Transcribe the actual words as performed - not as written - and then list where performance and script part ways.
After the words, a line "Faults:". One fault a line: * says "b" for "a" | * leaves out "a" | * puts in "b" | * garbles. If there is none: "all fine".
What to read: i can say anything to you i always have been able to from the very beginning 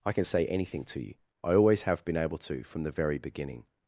i can say anything to you i always have been able to from the very beginning
Faults:
all fine